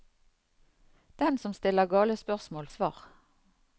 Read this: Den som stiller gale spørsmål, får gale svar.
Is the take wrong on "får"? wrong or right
wrong